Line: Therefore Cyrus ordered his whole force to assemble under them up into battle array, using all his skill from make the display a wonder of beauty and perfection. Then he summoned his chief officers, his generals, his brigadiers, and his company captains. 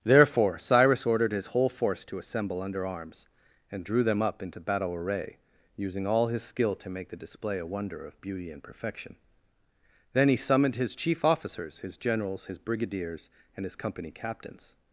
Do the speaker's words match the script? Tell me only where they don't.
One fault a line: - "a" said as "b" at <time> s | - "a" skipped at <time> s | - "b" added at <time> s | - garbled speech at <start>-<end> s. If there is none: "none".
- "arms and drew" added at 2.9 s
- "from" said as "to" at 6.8 s